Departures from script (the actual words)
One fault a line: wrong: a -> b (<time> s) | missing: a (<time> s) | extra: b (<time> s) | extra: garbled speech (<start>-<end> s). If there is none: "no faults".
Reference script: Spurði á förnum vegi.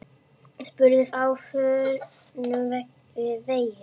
no faults